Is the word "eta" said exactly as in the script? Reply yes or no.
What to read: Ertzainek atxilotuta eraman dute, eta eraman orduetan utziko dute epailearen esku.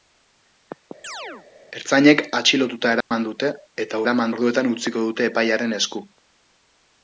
yes